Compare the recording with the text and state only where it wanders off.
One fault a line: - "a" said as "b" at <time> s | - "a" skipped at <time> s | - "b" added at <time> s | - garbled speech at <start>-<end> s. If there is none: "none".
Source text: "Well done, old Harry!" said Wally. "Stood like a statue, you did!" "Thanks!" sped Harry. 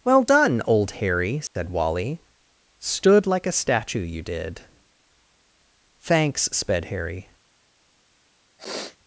none